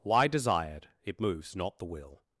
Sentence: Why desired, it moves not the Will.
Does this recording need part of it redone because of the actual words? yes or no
no